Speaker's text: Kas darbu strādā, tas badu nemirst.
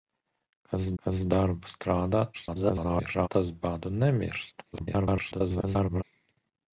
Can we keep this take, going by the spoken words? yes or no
no